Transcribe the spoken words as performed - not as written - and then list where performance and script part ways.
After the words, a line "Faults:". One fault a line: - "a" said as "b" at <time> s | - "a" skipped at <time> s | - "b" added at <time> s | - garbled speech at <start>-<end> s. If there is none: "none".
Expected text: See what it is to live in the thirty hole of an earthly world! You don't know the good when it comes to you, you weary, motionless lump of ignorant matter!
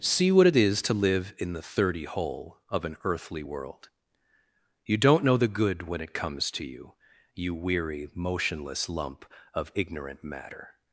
See what it is to live in the thirty hole of an earthly world! You don't know the good when it comes to you, you weary, motionless lump of ignorant matter!
Faults:
none